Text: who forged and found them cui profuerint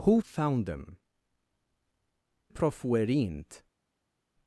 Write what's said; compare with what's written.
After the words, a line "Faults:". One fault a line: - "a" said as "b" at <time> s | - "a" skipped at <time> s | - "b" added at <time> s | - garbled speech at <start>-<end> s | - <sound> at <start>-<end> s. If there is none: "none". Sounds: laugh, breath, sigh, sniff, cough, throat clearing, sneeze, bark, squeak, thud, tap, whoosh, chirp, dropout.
who found them profuerint
Faults:
- "forged and" skipped at 0.2 s
- "cui" skipped at 1.0 s